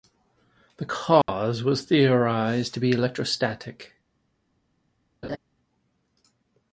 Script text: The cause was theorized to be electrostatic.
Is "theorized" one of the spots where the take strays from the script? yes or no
no